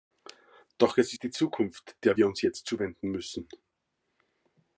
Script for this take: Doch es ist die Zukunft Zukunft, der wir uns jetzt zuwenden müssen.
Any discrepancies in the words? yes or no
yes